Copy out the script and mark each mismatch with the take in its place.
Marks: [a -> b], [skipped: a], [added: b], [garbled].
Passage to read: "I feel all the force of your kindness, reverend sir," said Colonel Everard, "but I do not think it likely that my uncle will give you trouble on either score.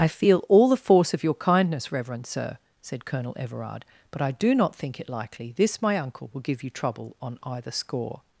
"I feel all the force of your kindness, reverend sir," said Colonel Everard, "but I do not think it likely [that -> this] my uncle will give you trouble on either score.